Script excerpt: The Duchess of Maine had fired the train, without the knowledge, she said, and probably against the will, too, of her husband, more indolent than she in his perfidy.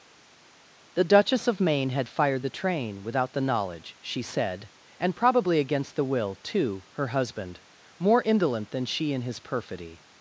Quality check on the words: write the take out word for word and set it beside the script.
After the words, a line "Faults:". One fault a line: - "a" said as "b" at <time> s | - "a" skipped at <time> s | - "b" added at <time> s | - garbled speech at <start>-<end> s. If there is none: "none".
The Duchess of Maine had fired the train, without the knowledge, she said, and probably against the will, too, her husband, more indolent than she in his perfidy.
Faults:
- "of" skipped at 6.8 s